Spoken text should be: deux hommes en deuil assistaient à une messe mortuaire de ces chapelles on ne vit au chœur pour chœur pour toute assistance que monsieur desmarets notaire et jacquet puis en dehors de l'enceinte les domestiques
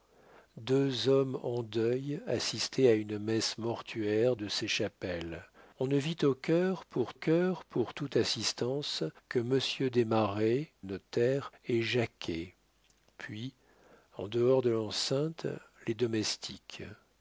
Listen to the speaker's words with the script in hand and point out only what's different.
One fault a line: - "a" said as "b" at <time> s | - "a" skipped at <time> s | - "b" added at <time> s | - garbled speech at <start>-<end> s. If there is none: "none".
none